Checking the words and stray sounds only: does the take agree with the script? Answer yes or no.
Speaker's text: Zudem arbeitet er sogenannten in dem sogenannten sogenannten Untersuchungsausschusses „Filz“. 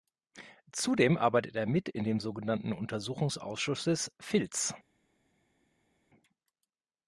no